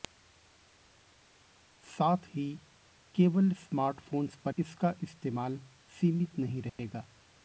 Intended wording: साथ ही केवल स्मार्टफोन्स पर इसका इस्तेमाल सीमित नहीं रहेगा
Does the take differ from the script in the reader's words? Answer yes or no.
no